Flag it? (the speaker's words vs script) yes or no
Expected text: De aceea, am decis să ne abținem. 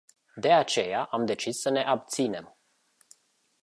no